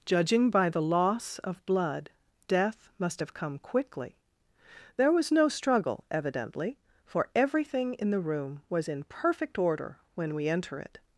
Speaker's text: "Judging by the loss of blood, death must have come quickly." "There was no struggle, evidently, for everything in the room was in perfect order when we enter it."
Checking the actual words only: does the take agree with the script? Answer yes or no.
yes